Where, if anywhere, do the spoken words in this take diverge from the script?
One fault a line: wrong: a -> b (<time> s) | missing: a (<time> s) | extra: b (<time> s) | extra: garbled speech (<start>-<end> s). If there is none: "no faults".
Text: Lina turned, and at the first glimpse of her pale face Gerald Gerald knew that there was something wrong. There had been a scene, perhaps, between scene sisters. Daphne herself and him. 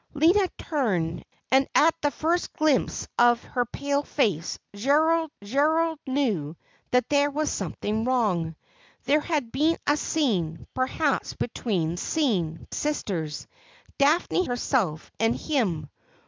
no faults